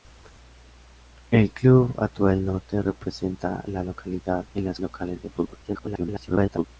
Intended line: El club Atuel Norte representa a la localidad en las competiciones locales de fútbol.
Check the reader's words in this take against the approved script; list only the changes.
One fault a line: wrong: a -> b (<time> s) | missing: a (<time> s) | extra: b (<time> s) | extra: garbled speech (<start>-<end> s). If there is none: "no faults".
missing: competiciones (4.8 s)
extra: garbled speech (5.6-6.7 s)